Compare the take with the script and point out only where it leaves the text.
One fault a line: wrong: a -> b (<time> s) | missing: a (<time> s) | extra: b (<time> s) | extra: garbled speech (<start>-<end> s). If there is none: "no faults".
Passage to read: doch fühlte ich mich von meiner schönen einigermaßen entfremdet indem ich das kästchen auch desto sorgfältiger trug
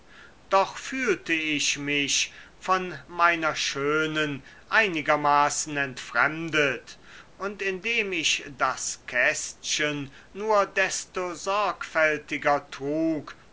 extra: und (7.4 s)
wrong: auch -> nur (10.3 s)